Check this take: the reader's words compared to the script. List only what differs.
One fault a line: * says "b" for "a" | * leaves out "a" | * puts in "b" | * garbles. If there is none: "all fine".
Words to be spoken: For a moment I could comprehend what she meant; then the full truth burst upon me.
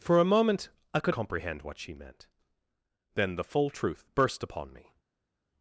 all fine